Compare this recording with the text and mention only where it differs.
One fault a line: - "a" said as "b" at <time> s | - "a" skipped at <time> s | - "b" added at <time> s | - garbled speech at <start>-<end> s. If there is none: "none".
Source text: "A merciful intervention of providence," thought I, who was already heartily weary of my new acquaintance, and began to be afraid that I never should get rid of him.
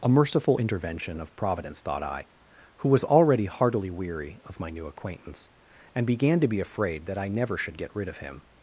none